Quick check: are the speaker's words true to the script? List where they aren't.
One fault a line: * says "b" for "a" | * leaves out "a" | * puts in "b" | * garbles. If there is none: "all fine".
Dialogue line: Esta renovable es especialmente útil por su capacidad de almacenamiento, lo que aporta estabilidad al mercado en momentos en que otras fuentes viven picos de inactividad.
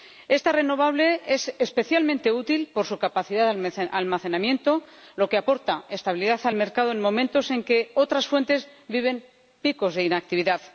all fine